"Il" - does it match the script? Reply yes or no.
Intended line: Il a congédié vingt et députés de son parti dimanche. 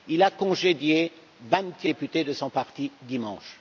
yes